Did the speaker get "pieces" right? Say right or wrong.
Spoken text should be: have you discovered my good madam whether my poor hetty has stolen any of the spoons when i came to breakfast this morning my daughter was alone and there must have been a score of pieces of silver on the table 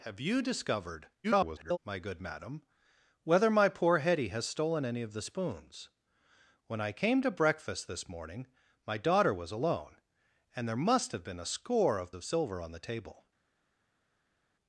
wrong